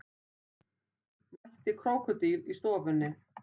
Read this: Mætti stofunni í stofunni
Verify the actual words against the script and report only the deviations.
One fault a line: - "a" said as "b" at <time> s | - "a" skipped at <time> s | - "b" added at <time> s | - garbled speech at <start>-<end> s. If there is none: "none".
- "stofunni" said as "krókódíl" at 1.8 s